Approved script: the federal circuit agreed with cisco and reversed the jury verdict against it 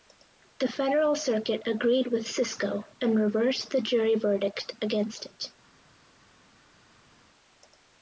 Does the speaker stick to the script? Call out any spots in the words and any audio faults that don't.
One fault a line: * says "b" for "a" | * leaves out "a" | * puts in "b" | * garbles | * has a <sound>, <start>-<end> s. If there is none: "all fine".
all fine